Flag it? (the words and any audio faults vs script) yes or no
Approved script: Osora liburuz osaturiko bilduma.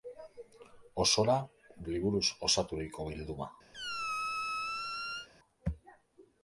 yes